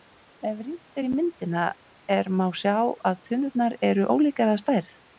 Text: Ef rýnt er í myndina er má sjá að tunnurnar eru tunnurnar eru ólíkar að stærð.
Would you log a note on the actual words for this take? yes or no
yes